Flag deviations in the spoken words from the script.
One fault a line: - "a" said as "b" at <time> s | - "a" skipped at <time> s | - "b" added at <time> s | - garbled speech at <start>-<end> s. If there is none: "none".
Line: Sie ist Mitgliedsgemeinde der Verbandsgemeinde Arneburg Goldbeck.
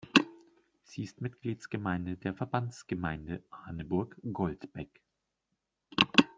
none